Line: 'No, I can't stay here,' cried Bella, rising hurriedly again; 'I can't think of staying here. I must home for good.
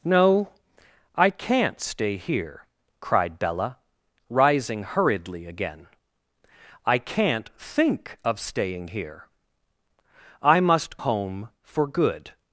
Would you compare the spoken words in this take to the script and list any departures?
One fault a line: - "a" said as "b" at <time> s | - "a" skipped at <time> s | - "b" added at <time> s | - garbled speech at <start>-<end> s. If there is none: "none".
none